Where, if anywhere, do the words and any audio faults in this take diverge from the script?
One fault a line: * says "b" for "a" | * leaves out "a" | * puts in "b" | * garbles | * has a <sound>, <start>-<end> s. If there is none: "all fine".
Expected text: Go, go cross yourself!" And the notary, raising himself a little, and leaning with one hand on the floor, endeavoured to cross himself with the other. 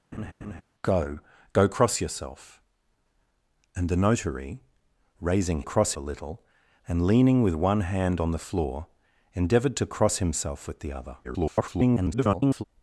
* has a laugh, 0.1-0.6 s
* says "cross" for "himself"
* garbles